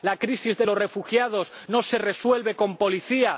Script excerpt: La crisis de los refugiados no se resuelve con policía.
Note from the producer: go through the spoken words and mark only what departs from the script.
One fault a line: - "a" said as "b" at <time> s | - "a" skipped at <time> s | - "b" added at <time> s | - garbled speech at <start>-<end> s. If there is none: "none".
none